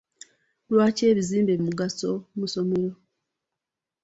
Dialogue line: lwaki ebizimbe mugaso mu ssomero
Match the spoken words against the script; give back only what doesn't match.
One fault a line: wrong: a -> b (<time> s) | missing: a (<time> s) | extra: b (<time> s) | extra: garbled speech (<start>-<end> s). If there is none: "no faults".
no faults